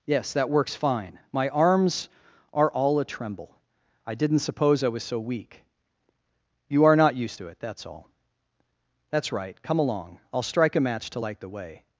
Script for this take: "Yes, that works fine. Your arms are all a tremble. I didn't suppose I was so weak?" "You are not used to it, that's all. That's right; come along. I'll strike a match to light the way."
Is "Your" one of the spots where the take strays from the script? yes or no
yes